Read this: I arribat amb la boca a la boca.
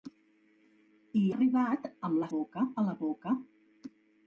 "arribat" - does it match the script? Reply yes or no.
yes